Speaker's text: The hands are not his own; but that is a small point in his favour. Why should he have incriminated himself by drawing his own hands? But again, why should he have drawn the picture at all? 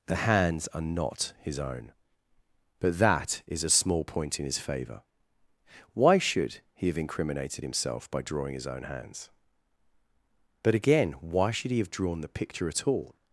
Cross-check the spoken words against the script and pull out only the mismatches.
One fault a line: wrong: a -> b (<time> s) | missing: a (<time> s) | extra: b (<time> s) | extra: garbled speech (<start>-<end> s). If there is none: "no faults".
no faults